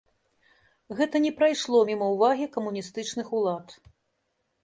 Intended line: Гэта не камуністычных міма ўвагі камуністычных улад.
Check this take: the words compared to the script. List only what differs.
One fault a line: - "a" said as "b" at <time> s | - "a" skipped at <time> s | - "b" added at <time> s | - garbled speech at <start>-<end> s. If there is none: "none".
- "камуністычных" said as "прайшло" at 1.4 s